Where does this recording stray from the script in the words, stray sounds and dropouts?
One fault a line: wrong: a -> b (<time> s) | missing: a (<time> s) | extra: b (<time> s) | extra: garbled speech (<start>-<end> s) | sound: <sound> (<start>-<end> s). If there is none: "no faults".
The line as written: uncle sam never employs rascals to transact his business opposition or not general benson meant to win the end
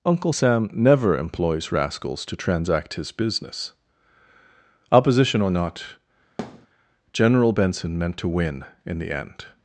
sound: thud (6.4-6.7 s)
extra: in (8.9 s)